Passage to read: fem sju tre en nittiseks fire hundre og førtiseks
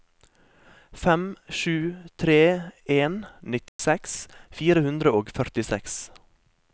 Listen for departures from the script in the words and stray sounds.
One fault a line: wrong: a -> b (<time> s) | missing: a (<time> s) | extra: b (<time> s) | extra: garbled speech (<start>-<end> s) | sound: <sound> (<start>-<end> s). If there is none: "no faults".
sound: dropout (3.7-3.8 s)